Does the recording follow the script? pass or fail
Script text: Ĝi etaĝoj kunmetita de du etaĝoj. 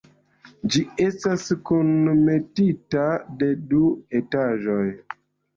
fail